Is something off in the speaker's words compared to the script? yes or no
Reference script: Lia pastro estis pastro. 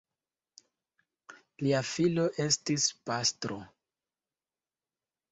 yes